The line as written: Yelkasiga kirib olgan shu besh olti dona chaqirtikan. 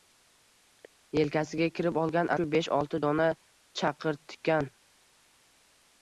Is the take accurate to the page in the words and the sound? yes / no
yes